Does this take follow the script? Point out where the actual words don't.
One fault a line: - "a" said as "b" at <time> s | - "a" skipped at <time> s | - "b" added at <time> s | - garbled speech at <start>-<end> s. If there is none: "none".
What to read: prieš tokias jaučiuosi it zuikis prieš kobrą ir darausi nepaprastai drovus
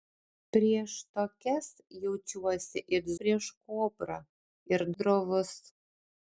- "zuikis" skipped at 3.1 s
- "darausi nepaprastai" skipped at 4.9 s